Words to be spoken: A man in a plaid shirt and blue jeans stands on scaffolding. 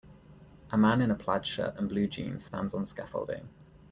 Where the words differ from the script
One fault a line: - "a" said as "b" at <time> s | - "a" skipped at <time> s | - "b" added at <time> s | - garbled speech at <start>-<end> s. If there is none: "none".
none